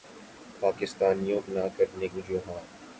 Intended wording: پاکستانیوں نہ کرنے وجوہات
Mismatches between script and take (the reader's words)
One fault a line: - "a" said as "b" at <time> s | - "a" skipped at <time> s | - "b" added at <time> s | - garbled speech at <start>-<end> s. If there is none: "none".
none